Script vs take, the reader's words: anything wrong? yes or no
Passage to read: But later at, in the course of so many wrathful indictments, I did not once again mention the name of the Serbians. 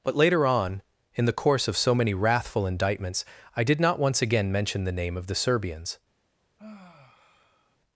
yes